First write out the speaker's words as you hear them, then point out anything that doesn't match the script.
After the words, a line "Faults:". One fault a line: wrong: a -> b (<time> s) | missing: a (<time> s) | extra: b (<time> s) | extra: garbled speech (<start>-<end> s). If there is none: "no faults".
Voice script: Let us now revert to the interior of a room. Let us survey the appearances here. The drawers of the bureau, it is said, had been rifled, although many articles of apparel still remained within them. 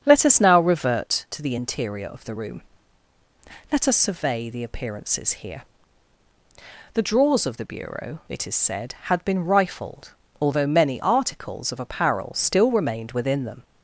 Let us now revert to the interior of the room. Let us survey the appearances here. The drawers of the bureau, it is said, had been rifled, although many articles of apparel still remained within them.
Faults:
wrong: a -> the (2.2 s)